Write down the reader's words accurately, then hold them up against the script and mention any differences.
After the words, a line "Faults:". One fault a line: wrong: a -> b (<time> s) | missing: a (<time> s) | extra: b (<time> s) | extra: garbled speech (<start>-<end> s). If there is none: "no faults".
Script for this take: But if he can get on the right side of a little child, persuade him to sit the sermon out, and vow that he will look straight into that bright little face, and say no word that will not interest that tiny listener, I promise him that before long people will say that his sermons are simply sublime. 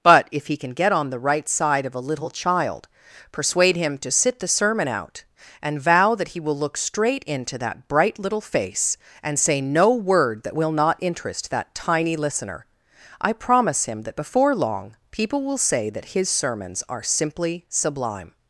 But if he can get on the right side of a little child, persuade him to sit the sermon out, and vow that he will look straight into that bright little face, and say no word that will not interest that tiny listener, I promise him that before long people will say that his sermons are simply sublime.
Faults:
no faults